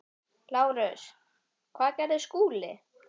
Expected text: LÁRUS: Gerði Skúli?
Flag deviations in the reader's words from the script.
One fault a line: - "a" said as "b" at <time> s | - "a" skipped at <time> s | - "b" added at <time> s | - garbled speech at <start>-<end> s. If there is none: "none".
- "Hvað" added at 1.8 s